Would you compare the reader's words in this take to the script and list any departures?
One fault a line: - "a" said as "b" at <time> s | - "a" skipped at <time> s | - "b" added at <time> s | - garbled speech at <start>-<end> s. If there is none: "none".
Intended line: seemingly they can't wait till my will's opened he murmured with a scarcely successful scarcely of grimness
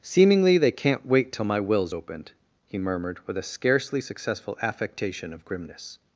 - "scarcely" said as "affectation" at 4.6 s